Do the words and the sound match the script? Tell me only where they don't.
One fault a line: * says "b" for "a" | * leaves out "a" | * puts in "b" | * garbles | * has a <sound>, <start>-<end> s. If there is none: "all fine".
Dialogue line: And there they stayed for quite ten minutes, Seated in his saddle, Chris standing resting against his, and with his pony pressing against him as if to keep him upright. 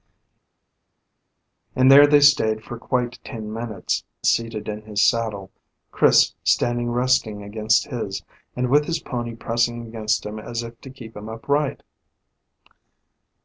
all fine